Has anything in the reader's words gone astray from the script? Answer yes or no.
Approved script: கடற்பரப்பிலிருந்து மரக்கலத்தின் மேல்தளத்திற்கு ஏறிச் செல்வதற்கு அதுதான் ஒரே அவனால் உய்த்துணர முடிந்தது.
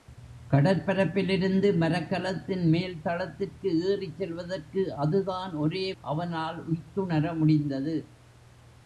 no